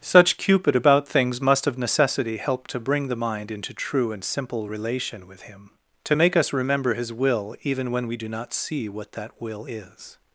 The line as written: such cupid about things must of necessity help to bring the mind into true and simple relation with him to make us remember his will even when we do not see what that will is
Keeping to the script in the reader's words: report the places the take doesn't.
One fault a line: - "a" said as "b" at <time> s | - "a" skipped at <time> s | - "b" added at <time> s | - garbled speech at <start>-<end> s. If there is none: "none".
none